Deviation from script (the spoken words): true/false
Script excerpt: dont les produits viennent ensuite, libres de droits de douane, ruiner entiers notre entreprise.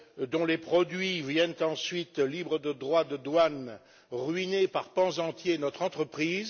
true